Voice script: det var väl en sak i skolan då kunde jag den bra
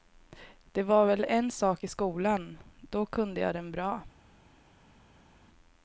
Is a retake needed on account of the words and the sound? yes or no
no